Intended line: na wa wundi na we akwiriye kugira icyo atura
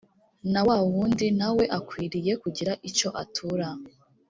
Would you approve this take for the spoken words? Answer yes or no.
yes